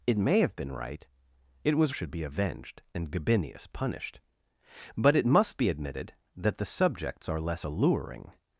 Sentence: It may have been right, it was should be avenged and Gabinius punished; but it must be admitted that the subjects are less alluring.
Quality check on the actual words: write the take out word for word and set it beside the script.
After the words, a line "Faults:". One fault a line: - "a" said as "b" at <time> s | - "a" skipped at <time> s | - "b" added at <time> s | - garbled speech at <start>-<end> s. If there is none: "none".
It may have been right, it was should be avenged and Gabinius punished; but it must be admitted that the subjects are less alluring.
Faults:
none